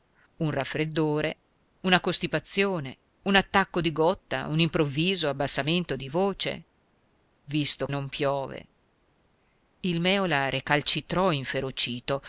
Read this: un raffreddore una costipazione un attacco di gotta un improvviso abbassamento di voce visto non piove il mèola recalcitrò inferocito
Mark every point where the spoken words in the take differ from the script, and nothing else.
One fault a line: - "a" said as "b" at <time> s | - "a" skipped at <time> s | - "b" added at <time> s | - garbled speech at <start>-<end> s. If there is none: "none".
none